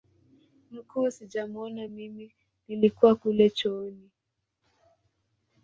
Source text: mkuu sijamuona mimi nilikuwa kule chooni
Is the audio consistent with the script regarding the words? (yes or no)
yes